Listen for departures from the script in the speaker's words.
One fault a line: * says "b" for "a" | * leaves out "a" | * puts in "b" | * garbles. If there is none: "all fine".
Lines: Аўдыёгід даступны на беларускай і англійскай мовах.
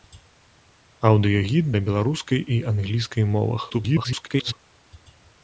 * leaves out "даступны"
* garbles